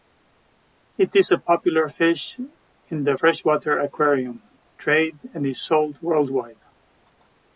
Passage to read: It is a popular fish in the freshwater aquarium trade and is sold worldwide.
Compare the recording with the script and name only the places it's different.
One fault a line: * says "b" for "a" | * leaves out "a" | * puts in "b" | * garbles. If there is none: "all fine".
all fine